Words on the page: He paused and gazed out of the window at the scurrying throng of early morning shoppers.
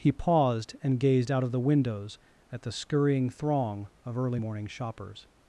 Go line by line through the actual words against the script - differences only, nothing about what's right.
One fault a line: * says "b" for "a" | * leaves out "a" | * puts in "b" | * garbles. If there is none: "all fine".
* says "windows" for "window"